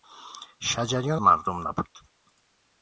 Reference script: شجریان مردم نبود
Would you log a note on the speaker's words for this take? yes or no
no